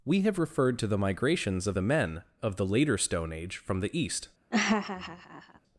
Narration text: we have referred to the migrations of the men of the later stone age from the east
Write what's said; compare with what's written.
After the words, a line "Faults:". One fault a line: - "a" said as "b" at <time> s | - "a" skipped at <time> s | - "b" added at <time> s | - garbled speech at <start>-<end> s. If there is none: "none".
we have referred to the migrations of the men of the later stone age from the east
Faults:
none